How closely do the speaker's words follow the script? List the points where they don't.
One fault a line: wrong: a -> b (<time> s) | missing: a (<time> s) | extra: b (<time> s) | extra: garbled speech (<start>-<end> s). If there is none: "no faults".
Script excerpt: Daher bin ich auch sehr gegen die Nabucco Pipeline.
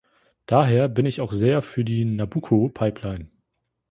wrong: gegen -> für (1.6 s)